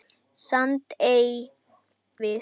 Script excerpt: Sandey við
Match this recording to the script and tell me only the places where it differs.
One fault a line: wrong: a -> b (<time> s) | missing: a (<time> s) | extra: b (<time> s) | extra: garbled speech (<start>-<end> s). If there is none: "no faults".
no faults